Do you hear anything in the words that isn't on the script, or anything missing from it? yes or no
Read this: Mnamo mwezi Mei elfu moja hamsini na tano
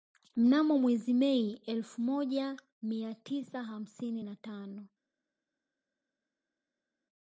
yes